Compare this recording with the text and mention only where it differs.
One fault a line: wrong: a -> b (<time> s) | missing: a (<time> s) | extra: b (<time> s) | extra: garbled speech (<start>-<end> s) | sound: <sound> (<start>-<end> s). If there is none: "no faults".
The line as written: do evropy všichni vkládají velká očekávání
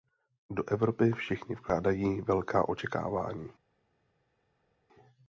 no faults